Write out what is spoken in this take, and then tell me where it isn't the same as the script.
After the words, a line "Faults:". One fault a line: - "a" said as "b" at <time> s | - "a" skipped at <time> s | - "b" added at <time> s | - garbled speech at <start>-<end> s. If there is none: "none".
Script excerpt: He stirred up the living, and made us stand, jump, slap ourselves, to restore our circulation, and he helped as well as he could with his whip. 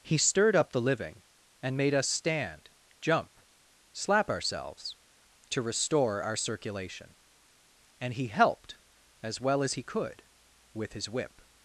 He stirred up the living, and made us stand, jump, slap ourselves, to restore our circulation, and he helped as well as he could with his whip.
Faults:
none